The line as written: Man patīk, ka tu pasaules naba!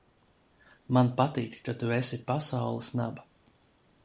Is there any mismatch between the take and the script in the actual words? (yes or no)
yes